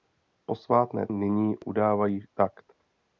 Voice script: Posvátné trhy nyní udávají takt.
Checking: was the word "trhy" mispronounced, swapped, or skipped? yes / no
yes